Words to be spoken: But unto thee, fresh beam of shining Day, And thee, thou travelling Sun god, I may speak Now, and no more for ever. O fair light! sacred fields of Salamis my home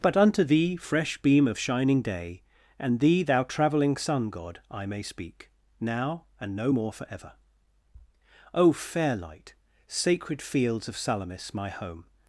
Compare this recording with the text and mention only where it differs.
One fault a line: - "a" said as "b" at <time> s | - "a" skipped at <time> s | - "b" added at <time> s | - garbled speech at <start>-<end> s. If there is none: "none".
none